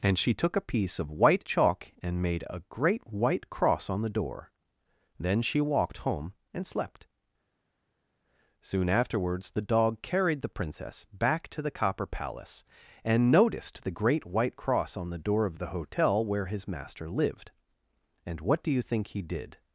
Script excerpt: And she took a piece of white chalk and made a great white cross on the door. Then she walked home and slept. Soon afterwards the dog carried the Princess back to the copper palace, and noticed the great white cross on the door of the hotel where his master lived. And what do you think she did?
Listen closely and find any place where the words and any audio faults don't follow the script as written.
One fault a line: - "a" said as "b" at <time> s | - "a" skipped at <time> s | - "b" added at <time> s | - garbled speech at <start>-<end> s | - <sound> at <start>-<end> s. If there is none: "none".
- "she" said as "he" at 19.1 s